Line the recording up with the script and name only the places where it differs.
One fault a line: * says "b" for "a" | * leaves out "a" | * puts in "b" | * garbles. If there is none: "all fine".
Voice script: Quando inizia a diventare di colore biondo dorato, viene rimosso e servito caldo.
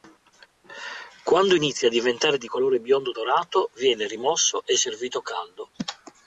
all fine